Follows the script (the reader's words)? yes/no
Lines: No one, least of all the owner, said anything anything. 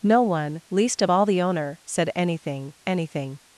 yes